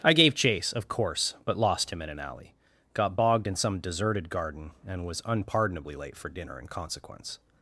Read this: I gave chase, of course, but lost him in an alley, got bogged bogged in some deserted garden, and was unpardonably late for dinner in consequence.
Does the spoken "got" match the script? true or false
true